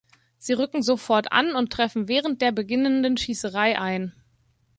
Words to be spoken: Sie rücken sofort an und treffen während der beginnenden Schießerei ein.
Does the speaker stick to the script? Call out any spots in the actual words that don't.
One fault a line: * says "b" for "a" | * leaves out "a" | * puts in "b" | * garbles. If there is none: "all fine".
all fine